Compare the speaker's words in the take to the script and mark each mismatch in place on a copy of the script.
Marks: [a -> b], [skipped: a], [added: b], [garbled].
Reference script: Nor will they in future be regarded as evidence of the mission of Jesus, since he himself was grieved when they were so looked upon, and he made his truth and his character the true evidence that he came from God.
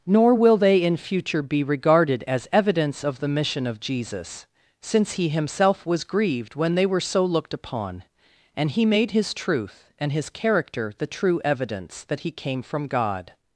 Nor will they in future be regarded as evidence of the mission of Jesus, since he himself was grieved when they were so looked upon, and he made his truth and his character the true evidence that he came from God.